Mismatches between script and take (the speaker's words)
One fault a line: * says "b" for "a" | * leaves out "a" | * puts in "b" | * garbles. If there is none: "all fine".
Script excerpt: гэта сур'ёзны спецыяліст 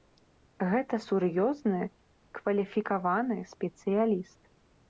* puts in "кваліфікаваны"